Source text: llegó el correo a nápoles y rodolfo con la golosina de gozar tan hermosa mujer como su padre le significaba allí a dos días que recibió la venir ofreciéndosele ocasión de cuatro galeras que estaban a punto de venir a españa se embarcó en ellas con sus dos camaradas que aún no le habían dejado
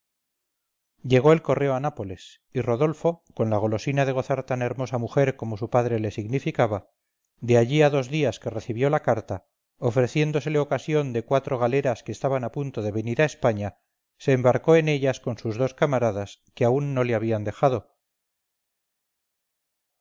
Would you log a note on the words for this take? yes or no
yes